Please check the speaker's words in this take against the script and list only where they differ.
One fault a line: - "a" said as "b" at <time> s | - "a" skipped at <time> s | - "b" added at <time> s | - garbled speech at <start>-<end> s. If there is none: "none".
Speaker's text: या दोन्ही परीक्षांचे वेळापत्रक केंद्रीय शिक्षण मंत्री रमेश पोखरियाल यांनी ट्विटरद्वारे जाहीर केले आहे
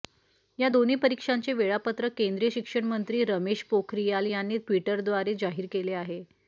none